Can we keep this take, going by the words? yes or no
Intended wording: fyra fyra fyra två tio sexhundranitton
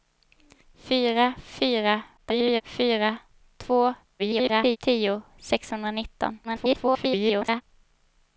no